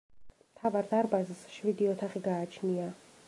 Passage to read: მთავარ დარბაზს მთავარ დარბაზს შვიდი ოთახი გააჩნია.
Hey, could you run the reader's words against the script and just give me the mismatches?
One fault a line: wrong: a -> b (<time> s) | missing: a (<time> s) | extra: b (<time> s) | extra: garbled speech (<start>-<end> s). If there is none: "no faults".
missing: მთავარ დარბაზს (1.4 s)